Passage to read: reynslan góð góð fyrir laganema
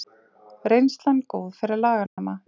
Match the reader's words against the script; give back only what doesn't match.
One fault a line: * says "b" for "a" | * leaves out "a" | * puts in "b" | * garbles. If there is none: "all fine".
* leaves out "góð"